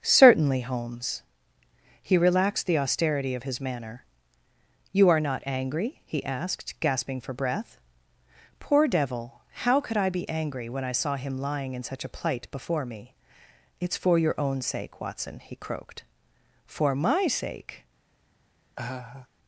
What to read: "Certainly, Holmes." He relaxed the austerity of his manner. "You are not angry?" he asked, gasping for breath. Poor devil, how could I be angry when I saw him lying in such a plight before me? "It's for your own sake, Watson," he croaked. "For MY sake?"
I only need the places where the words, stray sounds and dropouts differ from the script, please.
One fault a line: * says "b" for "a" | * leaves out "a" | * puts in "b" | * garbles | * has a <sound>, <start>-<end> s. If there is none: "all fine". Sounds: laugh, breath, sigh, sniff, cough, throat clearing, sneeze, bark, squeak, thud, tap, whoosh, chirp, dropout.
* has a laugh, 18.8-19.3 s